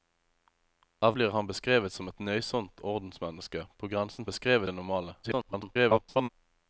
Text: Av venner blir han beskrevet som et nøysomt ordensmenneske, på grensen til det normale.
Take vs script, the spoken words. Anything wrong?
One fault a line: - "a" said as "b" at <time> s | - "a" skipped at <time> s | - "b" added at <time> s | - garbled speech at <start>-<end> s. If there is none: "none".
- "venner" skipped at 1.1 s
- "til" said as "beskrevet" at 4.3 s
- garbled speech at 5.2-6.3 s